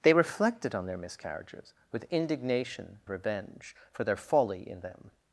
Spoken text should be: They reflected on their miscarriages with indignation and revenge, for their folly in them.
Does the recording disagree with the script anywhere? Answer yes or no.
yes